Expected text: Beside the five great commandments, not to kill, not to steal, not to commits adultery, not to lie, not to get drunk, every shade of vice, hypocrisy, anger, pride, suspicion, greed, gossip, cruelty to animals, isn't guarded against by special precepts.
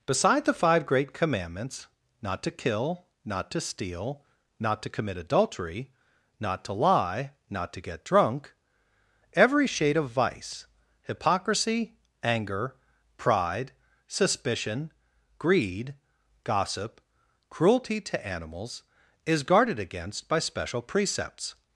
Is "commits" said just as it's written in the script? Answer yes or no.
no